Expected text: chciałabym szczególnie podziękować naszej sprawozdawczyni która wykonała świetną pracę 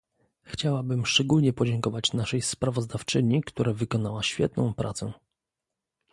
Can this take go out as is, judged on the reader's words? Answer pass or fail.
pass